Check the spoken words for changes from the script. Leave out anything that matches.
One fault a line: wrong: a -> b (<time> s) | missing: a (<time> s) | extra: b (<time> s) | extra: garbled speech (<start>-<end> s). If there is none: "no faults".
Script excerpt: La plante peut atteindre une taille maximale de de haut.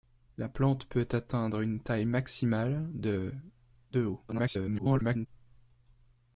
extra: garbled speech (4.3-5.3 s)